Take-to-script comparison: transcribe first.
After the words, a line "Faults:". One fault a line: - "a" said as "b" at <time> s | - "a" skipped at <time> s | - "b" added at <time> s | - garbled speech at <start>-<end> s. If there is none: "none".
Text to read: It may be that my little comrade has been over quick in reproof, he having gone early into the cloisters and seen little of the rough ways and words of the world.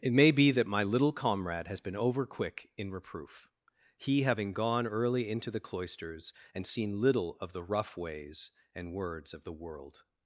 It may be that my little comrade has been over quick in reproof, he having gone early into the cloisters and seen little of the rough ways and words of the world.
Faults:
none